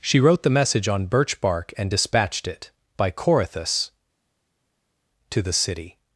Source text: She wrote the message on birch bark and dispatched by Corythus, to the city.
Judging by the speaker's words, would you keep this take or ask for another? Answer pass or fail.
fail